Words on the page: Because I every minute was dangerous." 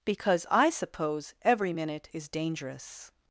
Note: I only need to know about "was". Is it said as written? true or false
false